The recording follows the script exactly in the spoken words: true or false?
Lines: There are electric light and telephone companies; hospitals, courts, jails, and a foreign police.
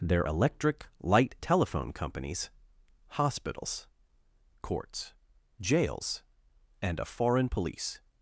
false